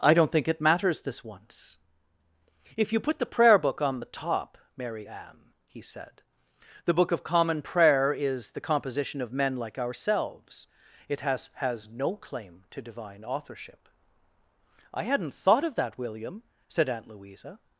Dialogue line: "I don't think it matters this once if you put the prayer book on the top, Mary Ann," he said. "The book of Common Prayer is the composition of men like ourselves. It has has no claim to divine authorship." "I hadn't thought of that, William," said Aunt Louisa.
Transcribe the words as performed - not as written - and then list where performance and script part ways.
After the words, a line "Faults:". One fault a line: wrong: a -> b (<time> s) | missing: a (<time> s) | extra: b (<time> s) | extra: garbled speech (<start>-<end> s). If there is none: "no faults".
"I don't think it matters this once if you put the prayer book on the top, Mary Ann," he said. "The book of Common Prayer is the composition of men like ourselves. It has has no claim to divine authorship." "I hadn't thought of that, William," said Aunt Louisa.
Faults:
no faults